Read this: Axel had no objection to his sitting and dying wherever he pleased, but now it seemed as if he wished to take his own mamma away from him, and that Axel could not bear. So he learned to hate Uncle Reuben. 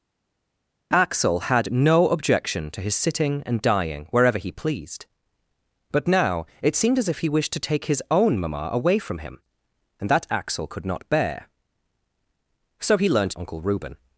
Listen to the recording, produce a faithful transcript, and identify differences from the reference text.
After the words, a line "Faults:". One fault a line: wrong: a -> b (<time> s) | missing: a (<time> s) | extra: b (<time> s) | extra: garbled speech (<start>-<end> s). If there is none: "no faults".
Axel had no objection to his sitting and dying wherever he pleased, but now it seemed as if he wished to take his own mamma away from him, and that Axel could not bear. So he learned Uncle Reuben.
Faults:
missing: to hate (13.3 s)